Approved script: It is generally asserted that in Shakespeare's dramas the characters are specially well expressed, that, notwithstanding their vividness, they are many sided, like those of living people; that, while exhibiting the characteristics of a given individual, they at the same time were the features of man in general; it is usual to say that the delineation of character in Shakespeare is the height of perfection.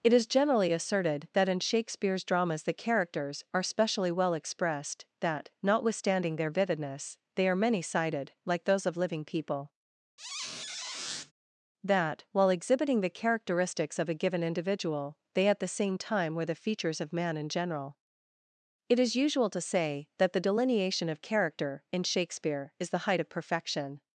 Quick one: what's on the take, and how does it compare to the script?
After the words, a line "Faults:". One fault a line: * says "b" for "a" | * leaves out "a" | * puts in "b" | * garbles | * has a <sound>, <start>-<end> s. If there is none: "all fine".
It is generally asserted that in Shakespeare's dramas the characters are specially well expressed, that, notwithstanding their vividness, they are many sided, like those of living people; that, while exhibiting the characteristics of a given individual, they at the same time were the features of man in general; it is usual to say that the delineation of character in Shakespeare is the height of perfection.
Faults:
* has a squeak, 10.2-11.3 s